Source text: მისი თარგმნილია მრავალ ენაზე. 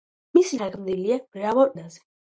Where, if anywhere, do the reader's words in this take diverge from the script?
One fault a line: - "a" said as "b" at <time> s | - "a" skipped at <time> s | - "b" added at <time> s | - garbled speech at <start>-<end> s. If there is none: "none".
none